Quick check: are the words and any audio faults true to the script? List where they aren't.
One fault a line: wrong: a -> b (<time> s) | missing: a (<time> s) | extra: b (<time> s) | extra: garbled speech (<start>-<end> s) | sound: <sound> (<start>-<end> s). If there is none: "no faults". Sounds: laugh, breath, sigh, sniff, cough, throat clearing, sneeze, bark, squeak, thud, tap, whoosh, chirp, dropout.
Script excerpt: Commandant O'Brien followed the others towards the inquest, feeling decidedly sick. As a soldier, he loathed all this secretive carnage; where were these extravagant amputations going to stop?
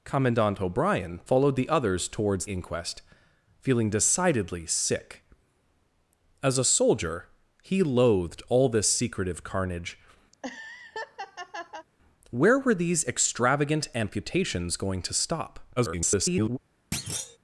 missing: the (2.5 s)
sound: laugh (10.3-11.9 s)
extra: garbled speech (15.8-16.6 s)
sound: thud (16.9-17.4 s)